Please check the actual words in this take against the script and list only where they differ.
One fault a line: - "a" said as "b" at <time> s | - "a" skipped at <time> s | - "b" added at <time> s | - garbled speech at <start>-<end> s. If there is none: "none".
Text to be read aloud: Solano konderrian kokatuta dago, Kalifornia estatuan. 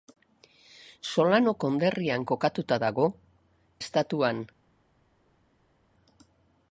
- "Kalifornia" skipped at 3.1 s